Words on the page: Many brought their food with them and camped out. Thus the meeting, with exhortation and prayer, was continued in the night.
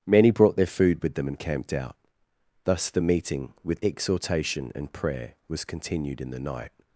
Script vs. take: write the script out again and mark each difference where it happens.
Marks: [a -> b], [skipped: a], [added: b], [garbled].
Many brought their food with them and camped out. Thus the meeting, with exhortation and prayer, was continued in the night.